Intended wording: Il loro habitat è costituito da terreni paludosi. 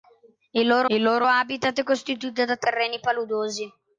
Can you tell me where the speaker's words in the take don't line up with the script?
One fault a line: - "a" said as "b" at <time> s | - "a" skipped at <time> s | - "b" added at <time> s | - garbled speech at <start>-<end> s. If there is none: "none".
- "il loro" added at 0.9 s